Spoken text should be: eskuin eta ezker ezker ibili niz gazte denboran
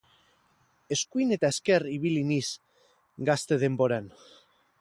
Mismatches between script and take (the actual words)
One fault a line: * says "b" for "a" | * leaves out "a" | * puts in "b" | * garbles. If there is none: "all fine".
* leaves out "ezker"